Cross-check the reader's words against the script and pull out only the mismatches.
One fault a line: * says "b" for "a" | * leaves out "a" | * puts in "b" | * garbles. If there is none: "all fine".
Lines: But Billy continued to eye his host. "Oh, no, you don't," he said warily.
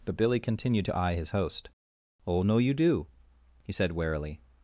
* says "do" for "don't"